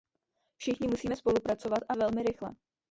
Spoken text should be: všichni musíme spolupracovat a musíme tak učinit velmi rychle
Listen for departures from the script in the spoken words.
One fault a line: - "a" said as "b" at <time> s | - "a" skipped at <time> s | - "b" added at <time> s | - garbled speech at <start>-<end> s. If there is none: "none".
- "musíme tak učinit" skipped at 1.9 s